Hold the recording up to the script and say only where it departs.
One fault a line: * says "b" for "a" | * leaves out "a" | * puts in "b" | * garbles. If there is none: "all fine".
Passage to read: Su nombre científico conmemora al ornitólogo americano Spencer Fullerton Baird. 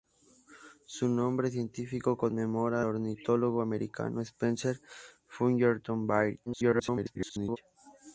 * leaves out "al"
* garbles